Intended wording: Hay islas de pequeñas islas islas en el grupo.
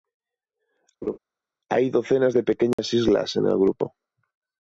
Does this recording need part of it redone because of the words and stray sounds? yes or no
yes